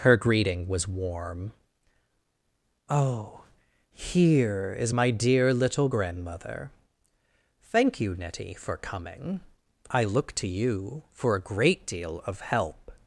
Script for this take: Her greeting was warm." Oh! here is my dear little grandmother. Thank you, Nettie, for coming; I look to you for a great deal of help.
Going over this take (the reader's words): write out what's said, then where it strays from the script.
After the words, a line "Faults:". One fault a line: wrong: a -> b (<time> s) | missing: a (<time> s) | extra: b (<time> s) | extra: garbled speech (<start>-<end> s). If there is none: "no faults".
Her greeting was warm." Oh! here is my dear little grandmother. Thank you, Nettie, for coming; I look to you for a great deal of help.
Faults:
no faults